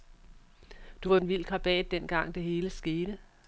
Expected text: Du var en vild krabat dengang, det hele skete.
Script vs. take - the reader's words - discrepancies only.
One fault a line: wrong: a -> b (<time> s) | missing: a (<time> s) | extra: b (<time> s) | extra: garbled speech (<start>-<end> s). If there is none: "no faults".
no faults